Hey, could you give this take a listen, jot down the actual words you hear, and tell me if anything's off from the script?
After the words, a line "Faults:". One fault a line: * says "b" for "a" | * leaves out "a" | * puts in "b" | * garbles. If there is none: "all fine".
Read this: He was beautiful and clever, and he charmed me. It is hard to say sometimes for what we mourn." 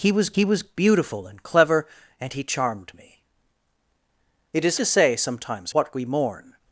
He was he was beautiful and clever, and he charmed me. It is to say sometimes what we mourn."
Faults:
* puts in "he was"
* leaves out "hard"
* leaves out "for"